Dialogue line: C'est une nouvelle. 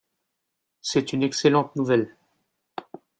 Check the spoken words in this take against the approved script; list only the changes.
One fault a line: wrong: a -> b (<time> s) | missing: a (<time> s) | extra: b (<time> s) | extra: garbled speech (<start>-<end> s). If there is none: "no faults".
extra: excellente (1.2 s)